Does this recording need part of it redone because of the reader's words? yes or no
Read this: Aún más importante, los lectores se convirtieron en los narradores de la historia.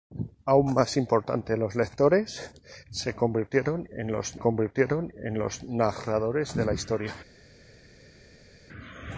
yes